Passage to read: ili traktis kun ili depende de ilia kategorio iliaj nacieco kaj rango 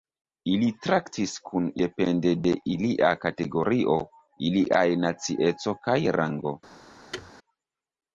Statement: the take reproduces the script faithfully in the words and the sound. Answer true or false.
false